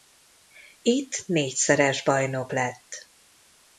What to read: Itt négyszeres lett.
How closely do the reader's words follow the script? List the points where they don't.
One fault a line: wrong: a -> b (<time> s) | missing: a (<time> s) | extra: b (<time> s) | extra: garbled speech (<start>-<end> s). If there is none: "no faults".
extra: bajnok (2.0 s)